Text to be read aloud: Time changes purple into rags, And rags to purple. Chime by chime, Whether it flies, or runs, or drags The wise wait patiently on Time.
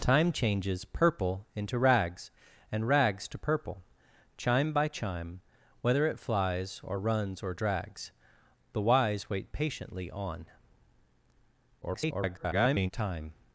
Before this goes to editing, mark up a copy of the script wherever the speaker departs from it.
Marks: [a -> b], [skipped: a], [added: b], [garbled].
Time changes purple into rags, And rags to purple. Chime by chime, Whether it flies, or runs, or drags The wise wait patiently on [garbled] Time.